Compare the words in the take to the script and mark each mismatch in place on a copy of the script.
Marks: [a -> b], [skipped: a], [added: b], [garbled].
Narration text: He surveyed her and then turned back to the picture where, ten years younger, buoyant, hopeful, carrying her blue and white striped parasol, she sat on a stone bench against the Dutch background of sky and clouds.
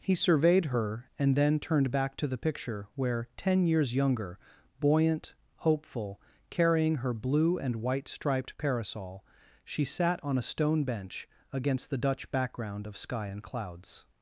He surveyed her and then turned back to the picture where, ten years younger, buoyant, hopeful, carrying her blue and white striped parasol, she sat on a stone bench against the Dutch background of sky and clouds.